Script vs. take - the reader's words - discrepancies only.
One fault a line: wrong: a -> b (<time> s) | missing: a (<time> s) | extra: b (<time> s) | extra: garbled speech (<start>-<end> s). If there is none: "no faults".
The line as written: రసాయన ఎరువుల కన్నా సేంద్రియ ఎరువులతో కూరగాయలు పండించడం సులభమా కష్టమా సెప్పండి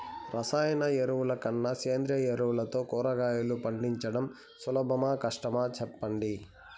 no faults